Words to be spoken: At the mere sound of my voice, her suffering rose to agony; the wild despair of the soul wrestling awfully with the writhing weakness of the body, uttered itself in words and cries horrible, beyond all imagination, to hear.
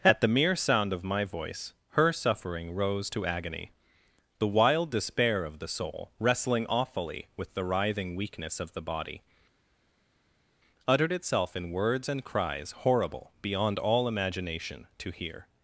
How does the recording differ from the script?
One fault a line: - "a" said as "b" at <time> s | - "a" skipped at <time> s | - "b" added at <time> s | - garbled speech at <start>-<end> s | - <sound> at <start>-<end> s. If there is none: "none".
none